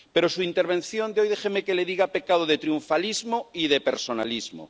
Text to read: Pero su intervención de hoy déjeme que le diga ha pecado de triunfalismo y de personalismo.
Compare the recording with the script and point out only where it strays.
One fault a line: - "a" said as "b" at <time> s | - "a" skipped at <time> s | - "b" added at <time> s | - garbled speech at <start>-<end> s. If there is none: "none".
none